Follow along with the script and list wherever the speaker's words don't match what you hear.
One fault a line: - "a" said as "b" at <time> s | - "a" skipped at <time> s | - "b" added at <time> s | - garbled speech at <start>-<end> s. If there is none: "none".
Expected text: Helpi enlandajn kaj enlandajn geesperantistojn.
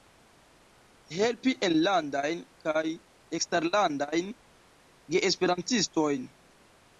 - "enlandajn" said as "eksterlandajn" at 3.4 s